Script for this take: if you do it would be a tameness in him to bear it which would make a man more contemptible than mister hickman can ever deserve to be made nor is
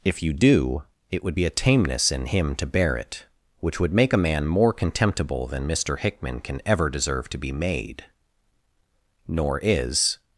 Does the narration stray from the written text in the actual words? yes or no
no